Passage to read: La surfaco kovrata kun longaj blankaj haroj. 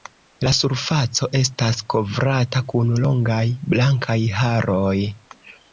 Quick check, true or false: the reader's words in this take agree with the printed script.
false